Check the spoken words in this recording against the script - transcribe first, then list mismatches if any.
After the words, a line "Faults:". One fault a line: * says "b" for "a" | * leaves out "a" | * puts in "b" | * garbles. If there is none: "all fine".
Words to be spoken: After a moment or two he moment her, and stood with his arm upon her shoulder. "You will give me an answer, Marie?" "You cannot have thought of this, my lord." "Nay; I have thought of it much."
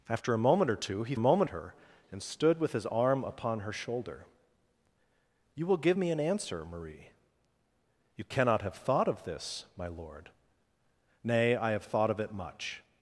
After a moment or two he moment her, and stood with his arm upon her shoulder. "You will give me an answer, Marie?" "You cannot have thought of this, my lord." "Nay; I have thought of it much."
Faults:
all fine